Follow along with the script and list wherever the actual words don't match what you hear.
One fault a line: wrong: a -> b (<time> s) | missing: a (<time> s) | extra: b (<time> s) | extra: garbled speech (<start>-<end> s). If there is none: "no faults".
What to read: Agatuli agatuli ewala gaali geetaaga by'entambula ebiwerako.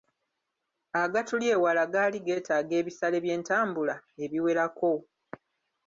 missing: agatuli (1.4 s)
extra: ebisale (2.8 s)